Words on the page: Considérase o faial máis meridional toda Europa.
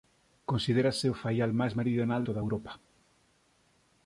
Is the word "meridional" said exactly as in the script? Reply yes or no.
yes